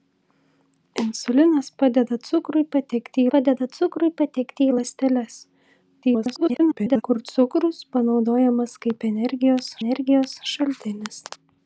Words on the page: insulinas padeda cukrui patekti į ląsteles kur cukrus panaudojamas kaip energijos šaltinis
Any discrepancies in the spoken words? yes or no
yes